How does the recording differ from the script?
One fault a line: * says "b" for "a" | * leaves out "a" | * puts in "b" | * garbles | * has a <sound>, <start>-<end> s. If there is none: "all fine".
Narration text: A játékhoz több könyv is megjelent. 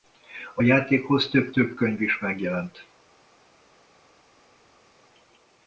* puts in "több"